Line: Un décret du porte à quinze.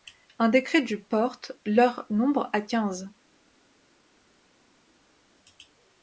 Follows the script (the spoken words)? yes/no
no